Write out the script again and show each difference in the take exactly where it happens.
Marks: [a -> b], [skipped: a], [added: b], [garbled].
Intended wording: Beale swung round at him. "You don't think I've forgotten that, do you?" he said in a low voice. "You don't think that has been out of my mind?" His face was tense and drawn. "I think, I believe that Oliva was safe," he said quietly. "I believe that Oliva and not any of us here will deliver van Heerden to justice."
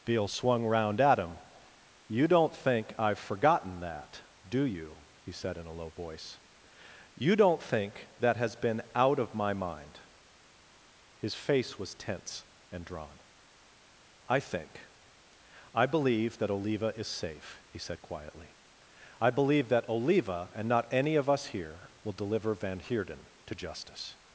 Beale swung round at him. "You don't think I've forgotten that, do you?" he said in a low voice. "You don't think that has been out of my mind?" His face was tense and drawn. "I think, I believe that Oliva [was -> is] safe," he said quietly. "I believe that Oliva and not any of us here will deliver van Heerden to justice."